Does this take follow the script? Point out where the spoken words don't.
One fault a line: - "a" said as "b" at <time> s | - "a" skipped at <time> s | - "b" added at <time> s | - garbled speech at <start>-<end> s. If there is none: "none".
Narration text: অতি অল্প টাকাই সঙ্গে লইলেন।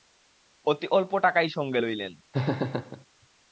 none